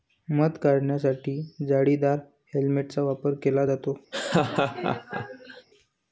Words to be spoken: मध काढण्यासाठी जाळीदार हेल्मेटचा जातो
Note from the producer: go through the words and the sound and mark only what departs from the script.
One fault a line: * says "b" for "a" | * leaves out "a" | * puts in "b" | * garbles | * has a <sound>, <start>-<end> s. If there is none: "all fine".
* puts in "वापर केला"
* has a laugh, 4.1-5.7 s